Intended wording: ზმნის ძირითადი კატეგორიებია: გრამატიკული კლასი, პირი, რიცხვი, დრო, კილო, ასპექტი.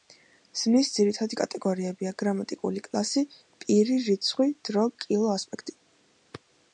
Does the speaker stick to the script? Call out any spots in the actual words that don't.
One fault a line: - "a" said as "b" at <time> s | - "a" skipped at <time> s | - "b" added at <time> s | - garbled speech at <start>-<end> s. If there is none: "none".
none